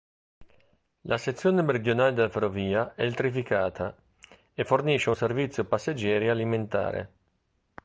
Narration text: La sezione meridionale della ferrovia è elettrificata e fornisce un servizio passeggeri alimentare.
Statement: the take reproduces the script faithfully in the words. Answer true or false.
true